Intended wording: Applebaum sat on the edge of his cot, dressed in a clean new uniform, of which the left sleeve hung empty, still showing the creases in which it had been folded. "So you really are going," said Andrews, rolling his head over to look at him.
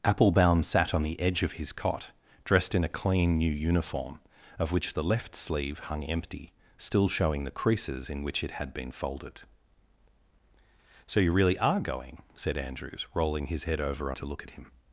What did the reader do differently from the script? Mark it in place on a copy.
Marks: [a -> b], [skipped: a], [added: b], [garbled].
Applebaum sat on the edge of his cot, dressed in a clean new uniform, of which the left sleeve hung empty, still showing the creases in which it had been folded. "So you really are going," said Andrews, rolling his head over to look at him.